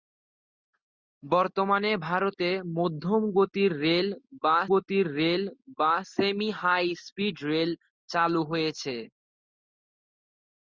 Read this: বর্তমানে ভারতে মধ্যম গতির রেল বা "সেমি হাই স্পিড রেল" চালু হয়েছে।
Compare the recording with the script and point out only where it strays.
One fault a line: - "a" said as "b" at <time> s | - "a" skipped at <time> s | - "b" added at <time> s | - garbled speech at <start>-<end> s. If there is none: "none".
- "গতির রেল বা" added at 4.7 s